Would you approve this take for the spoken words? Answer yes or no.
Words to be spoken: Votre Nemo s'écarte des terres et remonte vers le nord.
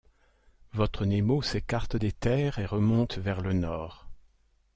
yes